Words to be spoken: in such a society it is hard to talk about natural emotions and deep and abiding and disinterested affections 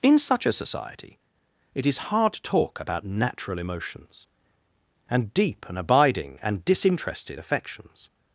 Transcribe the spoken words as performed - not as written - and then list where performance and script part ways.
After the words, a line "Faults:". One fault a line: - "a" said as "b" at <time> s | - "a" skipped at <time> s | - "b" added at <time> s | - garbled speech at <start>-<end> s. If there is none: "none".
in such a society it is hard to talk about natural emotions and deep and abiding and disinterested affections
Faults:
none